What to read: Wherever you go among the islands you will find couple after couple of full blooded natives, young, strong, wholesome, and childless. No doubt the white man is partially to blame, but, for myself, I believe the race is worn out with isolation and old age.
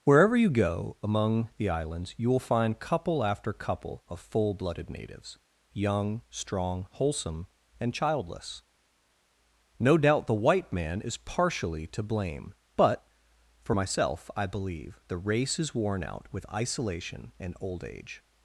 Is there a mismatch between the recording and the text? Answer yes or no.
no